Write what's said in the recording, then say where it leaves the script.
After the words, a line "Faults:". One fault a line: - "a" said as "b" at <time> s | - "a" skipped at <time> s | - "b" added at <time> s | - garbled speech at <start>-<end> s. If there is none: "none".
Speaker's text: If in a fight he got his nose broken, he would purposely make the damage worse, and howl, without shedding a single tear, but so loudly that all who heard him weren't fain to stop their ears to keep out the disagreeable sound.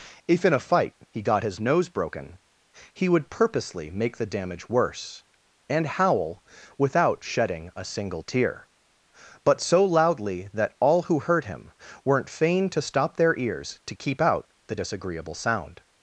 If in a fight he got his nose broken, he would purposely make the damage worse, and howl, without shedding a single tear, but so loudly that all who heard him weren't fain to stop their ears to keep out the disagreeable sound.
Faults:
none